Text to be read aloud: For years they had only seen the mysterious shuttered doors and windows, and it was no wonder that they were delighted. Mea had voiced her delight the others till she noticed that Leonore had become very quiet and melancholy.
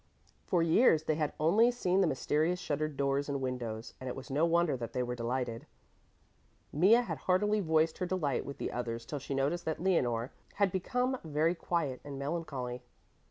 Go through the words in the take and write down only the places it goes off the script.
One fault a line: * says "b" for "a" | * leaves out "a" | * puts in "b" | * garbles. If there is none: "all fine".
* puts in "heartily"
* puts in "with"